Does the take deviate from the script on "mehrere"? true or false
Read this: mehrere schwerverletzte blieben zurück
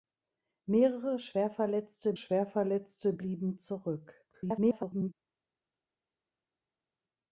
false